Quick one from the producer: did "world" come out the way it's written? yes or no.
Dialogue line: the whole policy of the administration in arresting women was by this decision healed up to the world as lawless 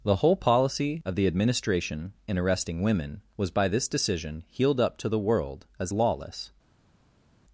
yes